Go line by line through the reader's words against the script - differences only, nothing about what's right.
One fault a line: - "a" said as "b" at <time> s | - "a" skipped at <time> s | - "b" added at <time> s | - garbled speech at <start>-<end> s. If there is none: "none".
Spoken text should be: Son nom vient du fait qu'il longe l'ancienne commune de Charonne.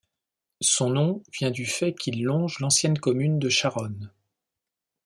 none